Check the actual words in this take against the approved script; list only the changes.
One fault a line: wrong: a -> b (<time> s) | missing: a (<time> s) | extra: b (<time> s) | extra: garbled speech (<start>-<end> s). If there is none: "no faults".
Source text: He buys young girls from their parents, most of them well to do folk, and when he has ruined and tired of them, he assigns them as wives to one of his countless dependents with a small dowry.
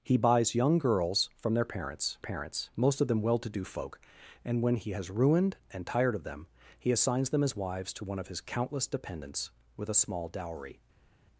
extra: parents (2.2 s)